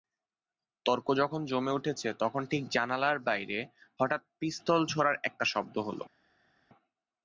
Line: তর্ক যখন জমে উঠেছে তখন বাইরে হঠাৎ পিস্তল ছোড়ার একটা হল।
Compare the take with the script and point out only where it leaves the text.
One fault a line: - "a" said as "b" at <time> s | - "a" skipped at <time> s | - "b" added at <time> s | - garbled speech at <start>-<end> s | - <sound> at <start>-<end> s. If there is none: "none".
- "ঠিক জানালার" added at 2.5 s
- "শব্দ" added at 5.5 s